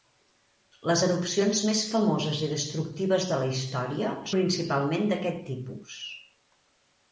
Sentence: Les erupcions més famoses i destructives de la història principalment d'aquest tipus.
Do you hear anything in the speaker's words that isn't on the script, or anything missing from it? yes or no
no